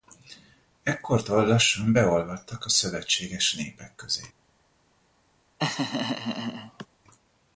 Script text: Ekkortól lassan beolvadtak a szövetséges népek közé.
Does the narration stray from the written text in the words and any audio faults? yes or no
yes